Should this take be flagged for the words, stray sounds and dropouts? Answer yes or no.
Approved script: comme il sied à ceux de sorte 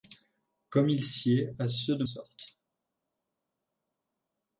no